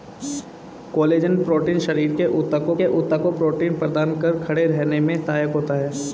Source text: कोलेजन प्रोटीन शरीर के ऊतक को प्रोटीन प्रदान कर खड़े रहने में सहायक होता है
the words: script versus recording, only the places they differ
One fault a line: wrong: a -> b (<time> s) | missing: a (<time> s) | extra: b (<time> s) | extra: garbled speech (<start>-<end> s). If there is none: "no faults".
extra: के ऊतक को (2.8 s)